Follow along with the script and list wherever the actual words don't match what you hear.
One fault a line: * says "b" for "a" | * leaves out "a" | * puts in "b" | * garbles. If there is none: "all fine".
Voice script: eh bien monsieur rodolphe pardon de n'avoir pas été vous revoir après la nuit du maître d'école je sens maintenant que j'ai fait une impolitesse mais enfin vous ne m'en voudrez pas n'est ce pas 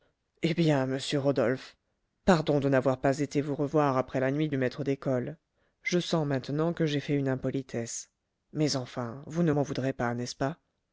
all fine